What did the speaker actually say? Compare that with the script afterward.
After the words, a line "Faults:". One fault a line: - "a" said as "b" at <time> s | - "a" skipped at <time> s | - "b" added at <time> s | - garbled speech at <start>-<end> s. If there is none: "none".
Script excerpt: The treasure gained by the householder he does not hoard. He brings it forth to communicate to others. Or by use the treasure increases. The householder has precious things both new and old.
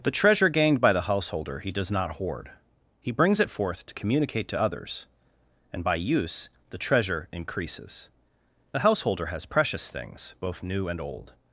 The treasure gained by the householder he does not hoard. He brings it forth to communicate to others. And by use the treasure increases. The householder has precious things both new and old.
Faults:
- "Or" said as "And" at 5.7 s